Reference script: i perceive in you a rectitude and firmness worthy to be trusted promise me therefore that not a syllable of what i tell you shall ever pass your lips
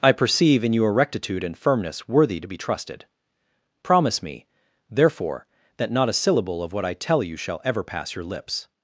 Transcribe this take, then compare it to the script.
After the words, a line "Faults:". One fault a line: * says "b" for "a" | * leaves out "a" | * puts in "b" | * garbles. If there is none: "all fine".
i perceive in you a rectitude and firmness worthy to be trusted promise me therefore that not a syllable of what i tell you shall ever pass your lips
Faults:
all fine